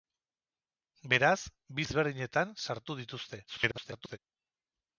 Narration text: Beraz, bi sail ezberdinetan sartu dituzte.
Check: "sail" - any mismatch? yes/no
yes